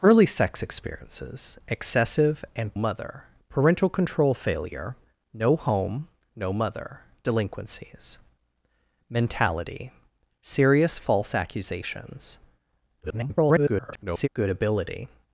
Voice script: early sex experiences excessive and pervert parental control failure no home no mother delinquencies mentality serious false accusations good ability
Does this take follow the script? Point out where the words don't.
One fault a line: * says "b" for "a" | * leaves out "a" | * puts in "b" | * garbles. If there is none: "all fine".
* says "mother" for "pervert"
* garbles